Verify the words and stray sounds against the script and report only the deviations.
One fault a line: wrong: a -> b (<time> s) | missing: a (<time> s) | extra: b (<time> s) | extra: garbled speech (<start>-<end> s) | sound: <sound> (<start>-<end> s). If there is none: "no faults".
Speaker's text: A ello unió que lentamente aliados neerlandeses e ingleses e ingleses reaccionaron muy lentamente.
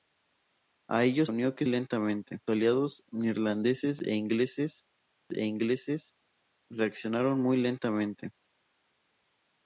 no faults